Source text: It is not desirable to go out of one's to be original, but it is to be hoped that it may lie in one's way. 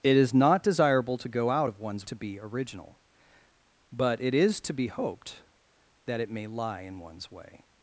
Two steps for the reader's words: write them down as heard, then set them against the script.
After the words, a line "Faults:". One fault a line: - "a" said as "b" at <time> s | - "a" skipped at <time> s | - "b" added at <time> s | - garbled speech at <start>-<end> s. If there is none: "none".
It is not desirable to go out of one's to be original, but it is to be hoped that it may lie in one's way.
Faults:
none